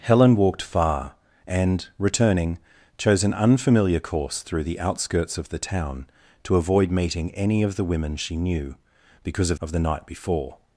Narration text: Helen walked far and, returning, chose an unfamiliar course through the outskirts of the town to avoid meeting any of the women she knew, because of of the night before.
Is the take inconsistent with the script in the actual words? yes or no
no